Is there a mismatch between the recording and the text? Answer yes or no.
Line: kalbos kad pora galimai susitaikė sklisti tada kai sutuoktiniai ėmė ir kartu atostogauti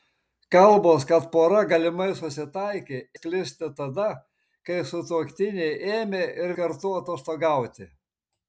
no